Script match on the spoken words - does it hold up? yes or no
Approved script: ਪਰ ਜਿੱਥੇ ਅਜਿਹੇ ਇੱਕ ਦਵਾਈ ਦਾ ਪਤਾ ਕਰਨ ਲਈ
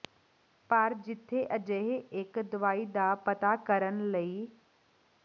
yes